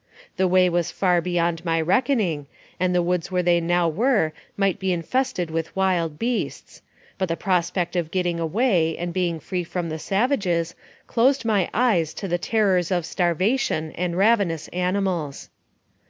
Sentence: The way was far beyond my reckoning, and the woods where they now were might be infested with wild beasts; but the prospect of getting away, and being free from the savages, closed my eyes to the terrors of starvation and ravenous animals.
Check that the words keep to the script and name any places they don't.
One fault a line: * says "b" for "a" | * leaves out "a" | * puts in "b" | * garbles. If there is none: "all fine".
all fine